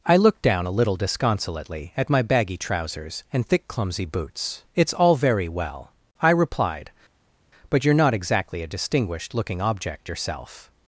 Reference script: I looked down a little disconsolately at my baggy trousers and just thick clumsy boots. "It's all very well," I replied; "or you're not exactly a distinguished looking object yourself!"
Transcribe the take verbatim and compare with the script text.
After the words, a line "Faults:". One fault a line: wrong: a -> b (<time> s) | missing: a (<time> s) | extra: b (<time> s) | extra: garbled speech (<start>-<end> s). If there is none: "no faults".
I looked down a little disconsolately at my baggy trousers and thick clumsy boots. "It's all very well," I replied; "but you're not exactly a distinguished looking object yourself!"
Faults:
missing: just (3.5 s)
wrong: or -> but (7.7 s)